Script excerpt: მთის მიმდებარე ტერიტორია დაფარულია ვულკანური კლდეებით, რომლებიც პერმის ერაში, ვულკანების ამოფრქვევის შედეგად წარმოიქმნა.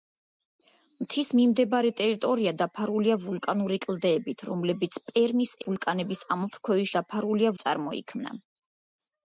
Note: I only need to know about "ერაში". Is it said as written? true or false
false